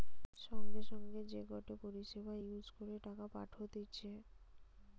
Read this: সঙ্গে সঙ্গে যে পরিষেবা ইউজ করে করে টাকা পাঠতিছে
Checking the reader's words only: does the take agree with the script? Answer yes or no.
no